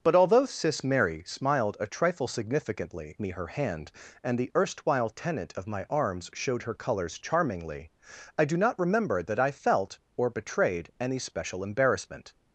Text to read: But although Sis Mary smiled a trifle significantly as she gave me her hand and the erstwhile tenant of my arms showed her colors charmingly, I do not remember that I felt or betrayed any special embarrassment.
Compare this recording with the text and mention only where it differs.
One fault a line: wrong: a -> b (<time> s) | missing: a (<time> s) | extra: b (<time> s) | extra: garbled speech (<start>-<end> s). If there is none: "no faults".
missing: as she gave (3.2 s)